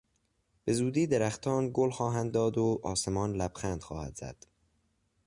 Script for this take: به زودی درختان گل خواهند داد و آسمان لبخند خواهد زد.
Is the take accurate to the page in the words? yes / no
yes